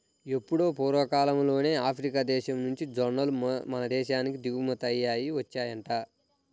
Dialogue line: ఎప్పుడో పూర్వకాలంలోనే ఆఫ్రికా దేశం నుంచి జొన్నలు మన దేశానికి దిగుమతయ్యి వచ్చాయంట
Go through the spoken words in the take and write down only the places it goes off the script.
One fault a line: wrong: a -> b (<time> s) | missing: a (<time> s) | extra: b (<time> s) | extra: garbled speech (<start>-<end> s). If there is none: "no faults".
no faults